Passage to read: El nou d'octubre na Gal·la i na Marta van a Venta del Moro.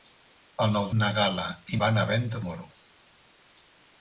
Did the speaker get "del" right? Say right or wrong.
wrong